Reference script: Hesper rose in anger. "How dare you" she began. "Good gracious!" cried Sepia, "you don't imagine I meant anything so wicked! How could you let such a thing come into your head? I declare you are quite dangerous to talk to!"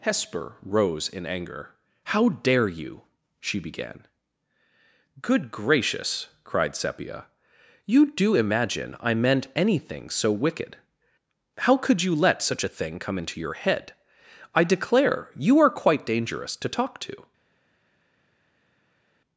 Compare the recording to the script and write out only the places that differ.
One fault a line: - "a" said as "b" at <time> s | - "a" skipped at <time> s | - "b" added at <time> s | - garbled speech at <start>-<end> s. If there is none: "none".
- "don't" said as "do" at 8.1 s